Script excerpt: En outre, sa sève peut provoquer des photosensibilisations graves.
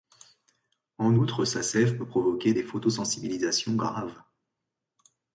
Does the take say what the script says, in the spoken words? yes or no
yes